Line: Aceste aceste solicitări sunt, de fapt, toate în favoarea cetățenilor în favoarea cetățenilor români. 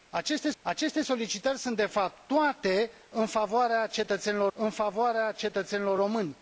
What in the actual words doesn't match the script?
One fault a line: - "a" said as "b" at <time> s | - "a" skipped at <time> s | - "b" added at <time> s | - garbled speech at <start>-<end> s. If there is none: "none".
none